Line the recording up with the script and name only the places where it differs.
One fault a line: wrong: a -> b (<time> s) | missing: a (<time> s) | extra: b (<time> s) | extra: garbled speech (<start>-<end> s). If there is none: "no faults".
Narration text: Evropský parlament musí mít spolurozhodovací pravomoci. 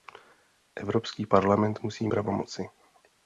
missing: mít spolurozhodovací (2.1 s)